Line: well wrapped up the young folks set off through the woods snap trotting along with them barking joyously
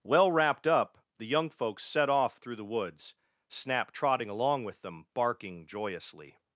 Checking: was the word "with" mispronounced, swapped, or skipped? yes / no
no